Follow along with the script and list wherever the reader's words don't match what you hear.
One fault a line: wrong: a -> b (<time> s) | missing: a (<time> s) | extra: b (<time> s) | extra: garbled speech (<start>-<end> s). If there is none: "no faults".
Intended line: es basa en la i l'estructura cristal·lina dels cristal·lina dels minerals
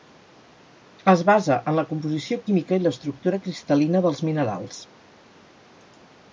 extra: composició química (1.9 s)
missing: cristal·lina dels (4.2 s)